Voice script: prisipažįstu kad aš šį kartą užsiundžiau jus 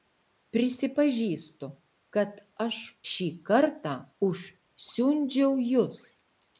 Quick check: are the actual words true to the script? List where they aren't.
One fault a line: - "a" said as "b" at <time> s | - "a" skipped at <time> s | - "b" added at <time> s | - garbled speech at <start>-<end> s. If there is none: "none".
none